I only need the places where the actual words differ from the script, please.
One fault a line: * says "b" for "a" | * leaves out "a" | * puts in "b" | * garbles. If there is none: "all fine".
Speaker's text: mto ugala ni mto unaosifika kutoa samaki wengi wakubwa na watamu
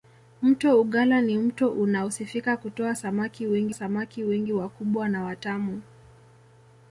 * puts in "samaki wengi"